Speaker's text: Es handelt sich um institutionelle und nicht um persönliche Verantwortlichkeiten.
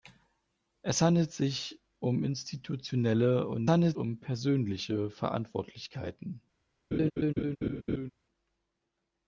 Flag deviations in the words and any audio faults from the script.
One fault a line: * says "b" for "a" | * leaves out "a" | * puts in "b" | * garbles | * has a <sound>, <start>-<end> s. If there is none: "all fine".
* says "handelt" for "nicht"
* has a laugh, 6.9-8.1 s